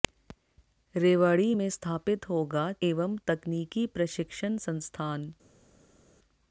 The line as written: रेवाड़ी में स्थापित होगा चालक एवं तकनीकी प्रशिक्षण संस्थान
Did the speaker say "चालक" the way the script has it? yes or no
no